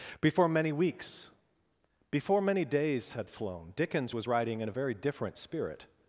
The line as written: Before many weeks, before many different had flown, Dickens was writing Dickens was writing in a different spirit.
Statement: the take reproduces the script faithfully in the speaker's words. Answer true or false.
false